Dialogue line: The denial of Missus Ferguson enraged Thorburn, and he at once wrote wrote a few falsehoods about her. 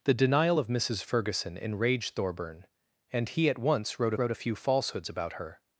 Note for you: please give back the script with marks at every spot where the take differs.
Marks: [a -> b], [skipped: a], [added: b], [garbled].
The denial of Missus Ferguson enraged Thorburn, and he at once wrote wrote a few falsehoods about her.